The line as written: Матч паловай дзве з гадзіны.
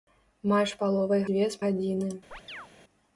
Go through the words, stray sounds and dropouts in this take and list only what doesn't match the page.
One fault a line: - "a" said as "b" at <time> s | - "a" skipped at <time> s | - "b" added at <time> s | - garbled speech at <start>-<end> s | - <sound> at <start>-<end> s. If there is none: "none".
- chirp at 2.3-2.7 s